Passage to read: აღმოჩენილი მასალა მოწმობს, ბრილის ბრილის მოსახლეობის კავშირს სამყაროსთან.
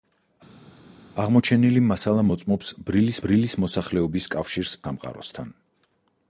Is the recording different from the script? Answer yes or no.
no